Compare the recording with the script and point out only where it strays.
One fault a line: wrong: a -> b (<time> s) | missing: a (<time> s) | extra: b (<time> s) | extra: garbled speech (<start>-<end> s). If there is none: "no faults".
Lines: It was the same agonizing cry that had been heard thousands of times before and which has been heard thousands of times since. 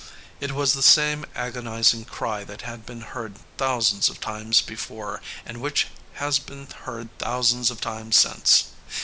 no faults